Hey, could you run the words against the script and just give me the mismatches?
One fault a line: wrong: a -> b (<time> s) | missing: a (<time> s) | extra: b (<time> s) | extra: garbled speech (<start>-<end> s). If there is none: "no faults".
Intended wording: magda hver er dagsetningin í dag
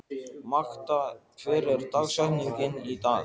no faults